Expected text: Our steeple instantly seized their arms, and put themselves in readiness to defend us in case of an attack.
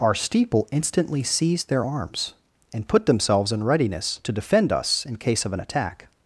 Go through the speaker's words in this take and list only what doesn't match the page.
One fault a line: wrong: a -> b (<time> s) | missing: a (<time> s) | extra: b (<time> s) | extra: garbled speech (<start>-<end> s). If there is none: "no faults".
no faults